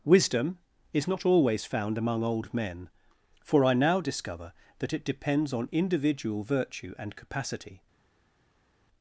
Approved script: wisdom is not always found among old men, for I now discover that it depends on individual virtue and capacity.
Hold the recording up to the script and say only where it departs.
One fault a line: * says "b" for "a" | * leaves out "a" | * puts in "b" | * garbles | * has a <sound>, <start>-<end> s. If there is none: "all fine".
all fine